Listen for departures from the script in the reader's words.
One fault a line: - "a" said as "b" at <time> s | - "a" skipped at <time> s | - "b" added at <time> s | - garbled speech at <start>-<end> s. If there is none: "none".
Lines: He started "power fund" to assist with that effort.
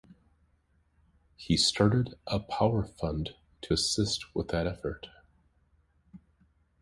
- "a" added at 2.2 s